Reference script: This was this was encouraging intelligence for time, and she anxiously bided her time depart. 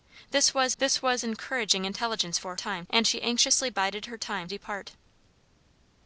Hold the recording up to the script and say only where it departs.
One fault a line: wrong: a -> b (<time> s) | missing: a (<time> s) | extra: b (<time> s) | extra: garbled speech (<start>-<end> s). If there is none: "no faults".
no faults